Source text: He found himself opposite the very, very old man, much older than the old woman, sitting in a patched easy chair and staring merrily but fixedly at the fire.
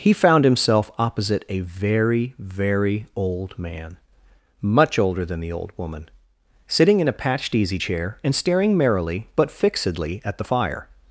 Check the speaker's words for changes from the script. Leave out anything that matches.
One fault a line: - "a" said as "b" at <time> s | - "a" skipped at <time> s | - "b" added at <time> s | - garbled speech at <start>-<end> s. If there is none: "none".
- "the" said as "a" at 1.5 s